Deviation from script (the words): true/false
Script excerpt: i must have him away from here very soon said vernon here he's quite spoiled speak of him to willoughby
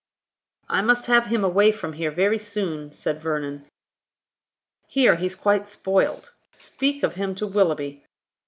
false